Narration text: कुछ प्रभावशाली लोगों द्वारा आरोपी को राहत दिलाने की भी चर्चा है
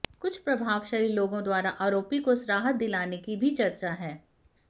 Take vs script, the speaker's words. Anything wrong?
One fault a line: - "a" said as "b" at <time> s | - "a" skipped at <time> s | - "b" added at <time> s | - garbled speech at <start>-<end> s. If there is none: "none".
none